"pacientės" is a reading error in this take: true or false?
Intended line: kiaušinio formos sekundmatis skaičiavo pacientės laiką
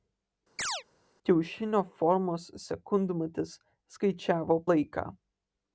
true